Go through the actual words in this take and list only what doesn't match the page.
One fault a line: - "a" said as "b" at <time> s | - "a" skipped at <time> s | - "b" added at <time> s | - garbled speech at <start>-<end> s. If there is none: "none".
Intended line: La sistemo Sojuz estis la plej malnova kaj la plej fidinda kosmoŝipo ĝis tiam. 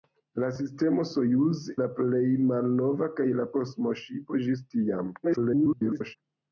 - "estis" skipped at 1.6 s
- "plej fidinda" skipped at 3.5 s
- garbled speech at 5.2-6.2 s